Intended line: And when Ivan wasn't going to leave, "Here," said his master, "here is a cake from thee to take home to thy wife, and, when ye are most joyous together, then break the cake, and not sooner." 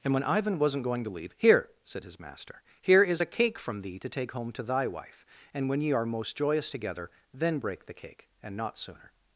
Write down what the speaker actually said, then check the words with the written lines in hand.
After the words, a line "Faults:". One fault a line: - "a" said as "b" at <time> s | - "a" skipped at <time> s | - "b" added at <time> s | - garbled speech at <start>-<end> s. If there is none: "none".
And when Ivan wasn't going to leave, "Here," said his master, "here is a cake from thee to take home to thy wife, and, when ye are most joyous together, then break the cake, and not sooner."
Faults:
none